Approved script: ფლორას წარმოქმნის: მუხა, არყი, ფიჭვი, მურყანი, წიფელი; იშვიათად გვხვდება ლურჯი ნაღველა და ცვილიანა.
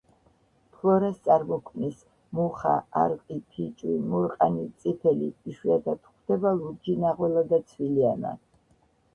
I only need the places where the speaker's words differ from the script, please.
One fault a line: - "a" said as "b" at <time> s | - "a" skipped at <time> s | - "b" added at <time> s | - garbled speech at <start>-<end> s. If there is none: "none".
none